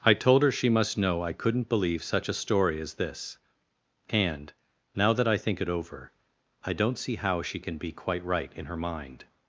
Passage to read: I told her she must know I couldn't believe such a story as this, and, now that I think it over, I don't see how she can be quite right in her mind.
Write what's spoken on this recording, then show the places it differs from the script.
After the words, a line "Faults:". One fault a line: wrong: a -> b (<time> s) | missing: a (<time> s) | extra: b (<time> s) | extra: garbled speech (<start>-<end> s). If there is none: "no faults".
I told her she must know I couldn't believe such a story as this, and, now that I think it over, I don't see how she can be quite right in her mind.
Faults:
no faults